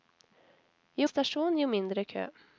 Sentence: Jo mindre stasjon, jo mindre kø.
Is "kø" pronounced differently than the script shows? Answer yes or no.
no